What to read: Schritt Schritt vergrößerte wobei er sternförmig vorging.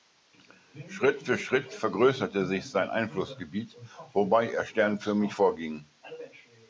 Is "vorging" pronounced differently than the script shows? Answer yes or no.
no